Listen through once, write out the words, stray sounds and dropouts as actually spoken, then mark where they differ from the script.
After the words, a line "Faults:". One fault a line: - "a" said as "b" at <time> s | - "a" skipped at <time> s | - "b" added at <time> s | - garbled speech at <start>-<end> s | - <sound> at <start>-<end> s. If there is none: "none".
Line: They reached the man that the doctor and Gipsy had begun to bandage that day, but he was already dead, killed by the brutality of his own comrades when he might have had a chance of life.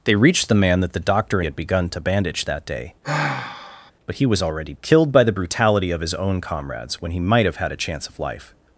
They reached the man that the doctor had begun to bandage that day, but he was already killed by the brutality of his own comrades when he might have had a chance of life.
Faults:
- "and Gipsy" skipped at 1.4 s
- sigh at 3.0-3.9 s
- "dead" skipped at 4.7 s